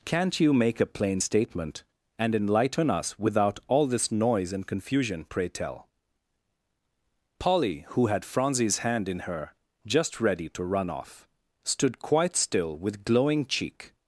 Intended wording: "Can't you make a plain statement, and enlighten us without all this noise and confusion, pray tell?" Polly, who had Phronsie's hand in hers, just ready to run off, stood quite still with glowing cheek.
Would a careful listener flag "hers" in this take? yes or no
yes